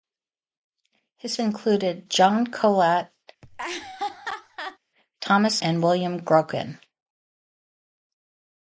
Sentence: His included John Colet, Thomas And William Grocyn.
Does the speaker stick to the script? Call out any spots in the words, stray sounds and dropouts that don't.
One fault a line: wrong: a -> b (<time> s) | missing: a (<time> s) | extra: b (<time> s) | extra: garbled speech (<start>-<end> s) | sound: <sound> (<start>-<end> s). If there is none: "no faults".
sound: laugh (3.4-4.8 s)